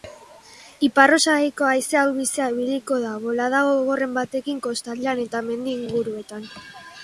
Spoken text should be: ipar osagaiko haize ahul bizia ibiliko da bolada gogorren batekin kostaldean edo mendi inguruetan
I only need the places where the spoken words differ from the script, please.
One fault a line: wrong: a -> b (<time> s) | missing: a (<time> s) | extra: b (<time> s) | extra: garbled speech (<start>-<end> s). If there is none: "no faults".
wrong: edo -> eta (5.3 s)